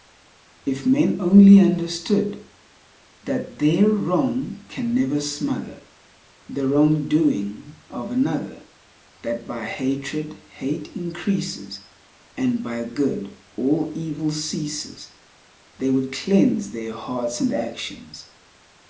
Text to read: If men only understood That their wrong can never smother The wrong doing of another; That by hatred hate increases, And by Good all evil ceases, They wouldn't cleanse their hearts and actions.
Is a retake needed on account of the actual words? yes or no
yes